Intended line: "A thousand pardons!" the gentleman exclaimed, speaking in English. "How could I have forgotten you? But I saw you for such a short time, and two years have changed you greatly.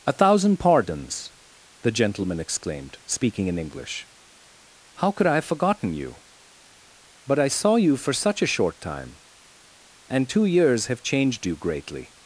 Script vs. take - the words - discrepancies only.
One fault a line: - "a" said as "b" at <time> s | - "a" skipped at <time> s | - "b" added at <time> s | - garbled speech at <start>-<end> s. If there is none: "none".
none